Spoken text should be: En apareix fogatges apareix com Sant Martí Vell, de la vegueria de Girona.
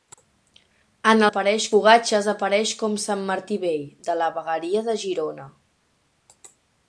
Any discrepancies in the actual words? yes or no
no